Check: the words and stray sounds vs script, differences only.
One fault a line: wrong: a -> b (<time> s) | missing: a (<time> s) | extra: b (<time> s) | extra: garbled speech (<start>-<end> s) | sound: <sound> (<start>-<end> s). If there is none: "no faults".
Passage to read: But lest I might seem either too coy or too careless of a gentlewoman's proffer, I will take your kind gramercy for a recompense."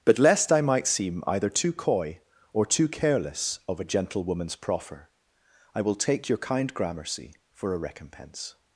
no faults